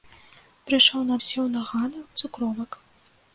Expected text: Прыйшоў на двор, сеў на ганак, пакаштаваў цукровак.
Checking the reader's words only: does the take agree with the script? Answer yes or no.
no